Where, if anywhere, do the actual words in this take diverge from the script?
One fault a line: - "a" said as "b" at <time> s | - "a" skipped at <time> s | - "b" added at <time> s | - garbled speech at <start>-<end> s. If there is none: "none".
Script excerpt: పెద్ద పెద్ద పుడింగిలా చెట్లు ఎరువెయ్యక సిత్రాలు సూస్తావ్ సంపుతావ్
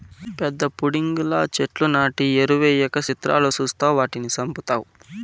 - "పెద్ద" skipped at 0.6 s
- "నాటి" added at 1.9 s
- "వాటిని" added at 4.0 s